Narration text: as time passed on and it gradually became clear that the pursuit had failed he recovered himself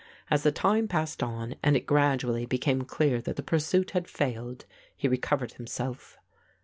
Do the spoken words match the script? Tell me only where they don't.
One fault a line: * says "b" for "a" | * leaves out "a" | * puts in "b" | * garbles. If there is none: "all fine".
* puts in "the"